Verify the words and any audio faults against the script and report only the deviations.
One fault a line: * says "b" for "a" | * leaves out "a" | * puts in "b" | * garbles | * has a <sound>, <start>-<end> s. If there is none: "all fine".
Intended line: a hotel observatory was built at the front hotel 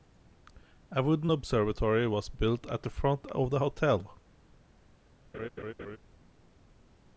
* says "wooden" for "hotel"
* puts in "of the"
* has a laugh, 5.3-6.0 s